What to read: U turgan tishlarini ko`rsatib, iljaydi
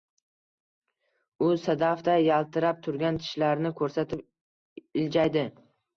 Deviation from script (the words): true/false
true